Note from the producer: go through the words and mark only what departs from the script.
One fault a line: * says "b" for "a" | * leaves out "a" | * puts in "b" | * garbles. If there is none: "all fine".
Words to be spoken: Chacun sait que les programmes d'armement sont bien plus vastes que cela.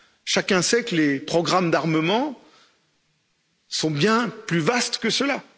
all fine